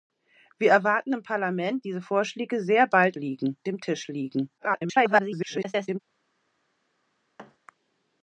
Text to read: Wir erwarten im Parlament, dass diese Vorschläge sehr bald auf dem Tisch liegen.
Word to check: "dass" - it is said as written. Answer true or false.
false